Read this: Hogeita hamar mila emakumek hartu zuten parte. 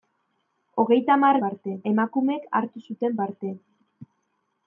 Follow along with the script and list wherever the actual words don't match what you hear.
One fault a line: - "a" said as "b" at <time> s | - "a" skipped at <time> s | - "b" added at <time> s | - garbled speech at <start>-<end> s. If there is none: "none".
- "mila" said as "parte" at 1.4 s